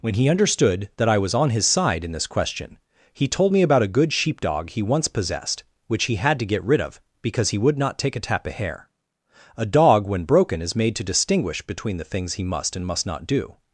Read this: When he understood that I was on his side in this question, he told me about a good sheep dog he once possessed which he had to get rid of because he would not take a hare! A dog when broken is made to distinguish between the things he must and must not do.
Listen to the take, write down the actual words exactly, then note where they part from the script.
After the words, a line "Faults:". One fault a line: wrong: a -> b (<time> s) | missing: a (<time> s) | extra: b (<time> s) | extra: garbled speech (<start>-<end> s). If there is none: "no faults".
When he understood that I was on his side in this question, he told me about a good sheep dog he once possessed which he had to get rid of because he would not take a tap of hair! A dog when broken is made to distinguish between the things he must and must not do.
Faults:
wrong: hare -> tap of hair (8.2 s)